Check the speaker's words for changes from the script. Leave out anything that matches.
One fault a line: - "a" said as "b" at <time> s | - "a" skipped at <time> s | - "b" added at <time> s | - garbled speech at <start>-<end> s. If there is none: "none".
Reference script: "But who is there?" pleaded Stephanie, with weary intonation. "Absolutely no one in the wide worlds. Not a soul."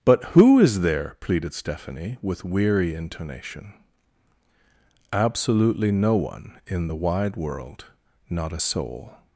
- "worlds" said as "world" at 7.3 s